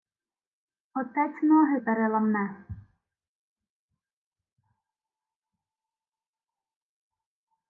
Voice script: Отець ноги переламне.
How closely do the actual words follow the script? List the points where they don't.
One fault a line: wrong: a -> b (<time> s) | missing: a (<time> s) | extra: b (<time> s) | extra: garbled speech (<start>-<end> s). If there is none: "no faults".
no faults